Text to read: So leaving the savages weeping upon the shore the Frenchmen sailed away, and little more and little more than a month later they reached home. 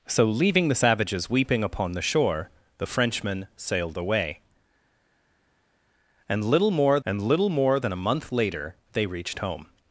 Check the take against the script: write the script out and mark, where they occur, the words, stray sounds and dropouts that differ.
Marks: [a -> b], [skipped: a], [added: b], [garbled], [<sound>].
So leaving the savages weeping upon the shore the Frenchmen sailed away, and little more and little more than a month later they reached home.